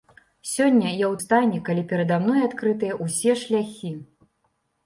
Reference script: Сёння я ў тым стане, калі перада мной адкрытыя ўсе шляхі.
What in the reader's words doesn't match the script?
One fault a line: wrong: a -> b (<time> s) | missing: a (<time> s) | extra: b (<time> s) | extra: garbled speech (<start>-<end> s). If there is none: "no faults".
missing: тым (1.1 s)